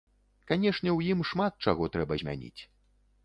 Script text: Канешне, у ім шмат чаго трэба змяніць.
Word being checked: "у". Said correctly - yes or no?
yes